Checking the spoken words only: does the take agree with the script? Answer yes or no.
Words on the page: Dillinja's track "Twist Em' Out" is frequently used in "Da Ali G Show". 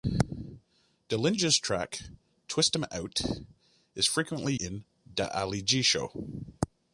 no